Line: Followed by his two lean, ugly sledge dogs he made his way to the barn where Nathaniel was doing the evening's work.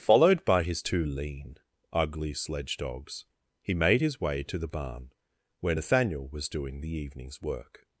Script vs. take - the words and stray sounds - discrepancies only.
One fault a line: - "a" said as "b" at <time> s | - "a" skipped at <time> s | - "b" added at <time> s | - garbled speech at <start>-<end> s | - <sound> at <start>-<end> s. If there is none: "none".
none